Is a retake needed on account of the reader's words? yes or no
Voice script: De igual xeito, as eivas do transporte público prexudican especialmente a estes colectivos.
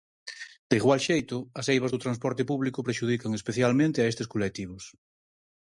no